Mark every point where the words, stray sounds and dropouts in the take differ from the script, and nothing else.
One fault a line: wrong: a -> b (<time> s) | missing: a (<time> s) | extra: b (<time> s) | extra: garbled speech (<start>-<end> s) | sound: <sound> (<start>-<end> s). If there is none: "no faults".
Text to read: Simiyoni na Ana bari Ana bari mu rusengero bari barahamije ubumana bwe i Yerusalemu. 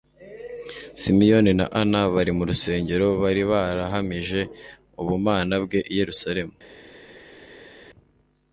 missing: Ana bari (2.3 s)